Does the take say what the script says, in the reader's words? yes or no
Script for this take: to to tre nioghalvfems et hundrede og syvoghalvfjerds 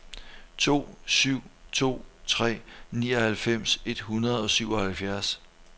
no